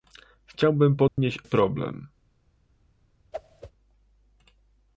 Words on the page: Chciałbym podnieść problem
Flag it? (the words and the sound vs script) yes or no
yes